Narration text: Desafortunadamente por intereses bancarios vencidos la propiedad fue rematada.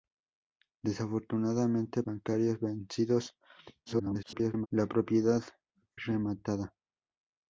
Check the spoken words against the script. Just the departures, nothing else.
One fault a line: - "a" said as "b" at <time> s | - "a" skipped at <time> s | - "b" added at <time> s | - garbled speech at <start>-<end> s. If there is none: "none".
- "por intereses" skipped at 2.0 s
- garbled speech at 3.9-4.7 s
- "fue" skipped at 5.4 s